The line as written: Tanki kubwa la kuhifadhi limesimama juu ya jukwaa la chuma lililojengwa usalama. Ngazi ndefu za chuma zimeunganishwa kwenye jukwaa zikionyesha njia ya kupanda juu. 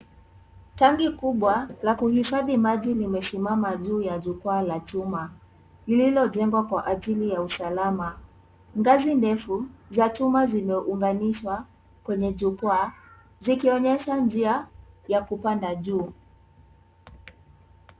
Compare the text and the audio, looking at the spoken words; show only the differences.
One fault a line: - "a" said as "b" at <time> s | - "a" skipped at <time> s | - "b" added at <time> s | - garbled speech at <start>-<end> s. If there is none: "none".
- "maji" added at 2.6 s
- "kwa ajili ya" added at 6.7 s